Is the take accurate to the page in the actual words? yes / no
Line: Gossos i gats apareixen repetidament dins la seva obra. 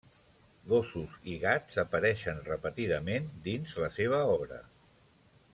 yes